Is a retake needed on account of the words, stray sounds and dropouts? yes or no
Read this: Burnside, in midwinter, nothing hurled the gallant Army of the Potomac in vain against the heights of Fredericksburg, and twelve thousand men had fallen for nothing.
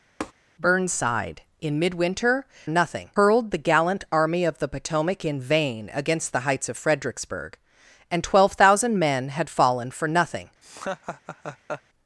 yes